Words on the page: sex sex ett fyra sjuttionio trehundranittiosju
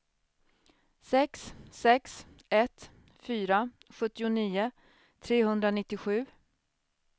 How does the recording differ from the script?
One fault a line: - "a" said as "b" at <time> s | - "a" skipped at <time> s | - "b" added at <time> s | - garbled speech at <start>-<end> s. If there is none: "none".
none